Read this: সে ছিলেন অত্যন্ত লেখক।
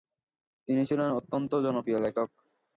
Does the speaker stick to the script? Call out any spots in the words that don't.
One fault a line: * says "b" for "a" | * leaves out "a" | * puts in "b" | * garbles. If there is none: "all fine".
* says "তিনি" for "সে"
* puts in "জনপ্রিয়"